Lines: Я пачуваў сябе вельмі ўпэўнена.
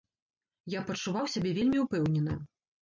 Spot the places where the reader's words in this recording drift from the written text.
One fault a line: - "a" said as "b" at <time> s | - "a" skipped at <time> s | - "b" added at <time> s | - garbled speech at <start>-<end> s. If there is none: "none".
none